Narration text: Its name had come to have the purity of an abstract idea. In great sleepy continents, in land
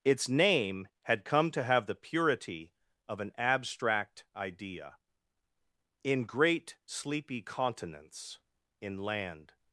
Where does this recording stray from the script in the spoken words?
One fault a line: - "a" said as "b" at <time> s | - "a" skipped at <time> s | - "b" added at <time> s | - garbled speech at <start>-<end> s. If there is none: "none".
none